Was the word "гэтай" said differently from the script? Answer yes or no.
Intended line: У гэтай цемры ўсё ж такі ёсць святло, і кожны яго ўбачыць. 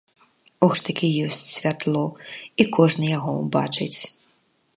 yes